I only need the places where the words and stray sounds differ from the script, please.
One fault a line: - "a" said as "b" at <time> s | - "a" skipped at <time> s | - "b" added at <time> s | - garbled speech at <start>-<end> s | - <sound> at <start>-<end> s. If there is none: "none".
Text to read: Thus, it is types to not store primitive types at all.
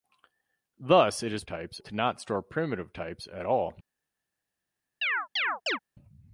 - chirp at 5.0-5.8 s